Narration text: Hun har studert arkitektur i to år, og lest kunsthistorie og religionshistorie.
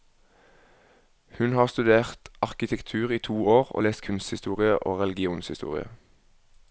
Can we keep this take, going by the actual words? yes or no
yes